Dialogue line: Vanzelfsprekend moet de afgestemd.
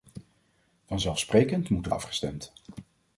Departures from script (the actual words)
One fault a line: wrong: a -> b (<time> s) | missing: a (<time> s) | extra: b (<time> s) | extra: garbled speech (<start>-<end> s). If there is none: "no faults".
no faults